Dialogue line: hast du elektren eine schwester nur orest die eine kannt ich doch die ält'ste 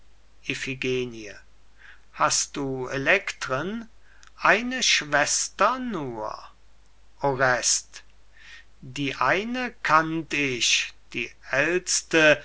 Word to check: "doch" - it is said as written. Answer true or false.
false